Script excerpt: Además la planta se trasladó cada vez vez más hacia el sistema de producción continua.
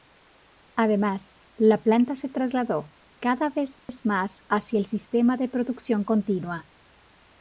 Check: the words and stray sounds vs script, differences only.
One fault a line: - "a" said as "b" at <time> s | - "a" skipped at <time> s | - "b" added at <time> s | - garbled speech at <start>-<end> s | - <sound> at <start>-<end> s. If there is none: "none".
- dropout at 3.8-3.9 s